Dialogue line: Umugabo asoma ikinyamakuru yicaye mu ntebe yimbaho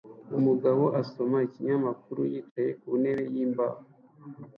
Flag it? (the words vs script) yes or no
yes